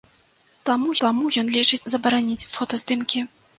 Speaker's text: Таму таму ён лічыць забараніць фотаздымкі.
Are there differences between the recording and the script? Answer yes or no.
no